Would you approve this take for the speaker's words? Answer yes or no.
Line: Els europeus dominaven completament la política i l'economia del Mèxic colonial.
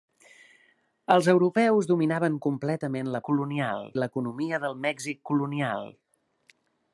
no